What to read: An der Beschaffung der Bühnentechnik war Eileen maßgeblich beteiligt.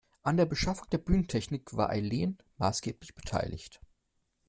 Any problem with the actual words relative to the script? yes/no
no